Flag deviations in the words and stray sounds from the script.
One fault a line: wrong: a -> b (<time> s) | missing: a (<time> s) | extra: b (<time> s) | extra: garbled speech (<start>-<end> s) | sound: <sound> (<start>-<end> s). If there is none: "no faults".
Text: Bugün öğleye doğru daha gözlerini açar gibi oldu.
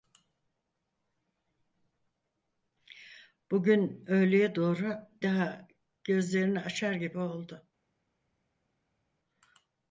no faults